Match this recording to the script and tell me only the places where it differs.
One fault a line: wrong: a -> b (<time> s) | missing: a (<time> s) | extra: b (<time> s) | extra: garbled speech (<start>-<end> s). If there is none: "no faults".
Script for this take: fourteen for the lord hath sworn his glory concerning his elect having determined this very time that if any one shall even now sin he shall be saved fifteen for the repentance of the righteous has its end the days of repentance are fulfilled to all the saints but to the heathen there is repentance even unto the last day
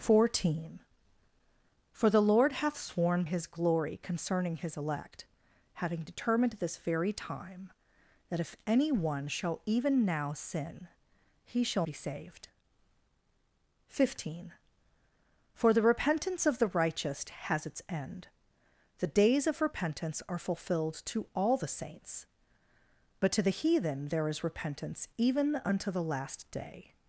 no faults